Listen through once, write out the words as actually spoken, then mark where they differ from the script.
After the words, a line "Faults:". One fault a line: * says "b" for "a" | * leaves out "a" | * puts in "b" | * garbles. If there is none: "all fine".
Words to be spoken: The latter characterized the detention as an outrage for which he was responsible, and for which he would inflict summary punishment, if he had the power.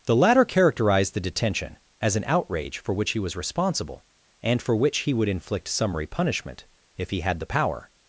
The latter characterized the detention as an outrage for which he was responsible, and for which he would inflict summary punishment, if he had the power.
Faults:
all fine